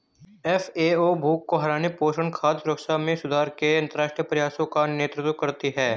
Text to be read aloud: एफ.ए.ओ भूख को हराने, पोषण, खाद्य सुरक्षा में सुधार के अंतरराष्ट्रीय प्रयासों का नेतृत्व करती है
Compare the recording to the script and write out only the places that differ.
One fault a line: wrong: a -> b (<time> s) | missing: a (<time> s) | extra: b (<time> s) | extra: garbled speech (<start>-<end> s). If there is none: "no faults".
no faults